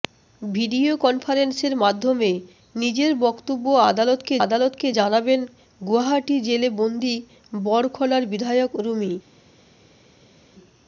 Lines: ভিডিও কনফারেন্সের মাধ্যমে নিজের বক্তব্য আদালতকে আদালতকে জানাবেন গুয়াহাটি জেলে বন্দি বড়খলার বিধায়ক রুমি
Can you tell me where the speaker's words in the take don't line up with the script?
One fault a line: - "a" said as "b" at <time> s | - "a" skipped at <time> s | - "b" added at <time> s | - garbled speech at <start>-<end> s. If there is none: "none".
none